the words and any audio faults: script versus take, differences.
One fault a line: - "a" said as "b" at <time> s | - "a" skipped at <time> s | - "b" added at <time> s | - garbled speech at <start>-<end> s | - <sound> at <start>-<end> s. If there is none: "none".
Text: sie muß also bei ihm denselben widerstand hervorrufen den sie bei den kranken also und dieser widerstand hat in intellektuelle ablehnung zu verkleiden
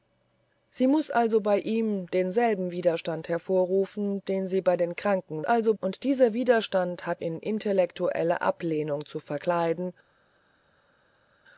none